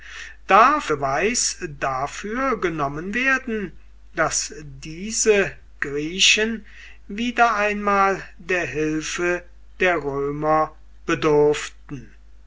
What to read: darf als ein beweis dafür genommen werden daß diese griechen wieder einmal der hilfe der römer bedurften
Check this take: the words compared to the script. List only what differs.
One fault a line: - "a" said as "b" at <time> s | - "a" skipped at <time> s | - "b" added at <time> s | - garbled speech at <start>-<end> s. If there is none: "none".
- "als ein" skipped at 0.9 s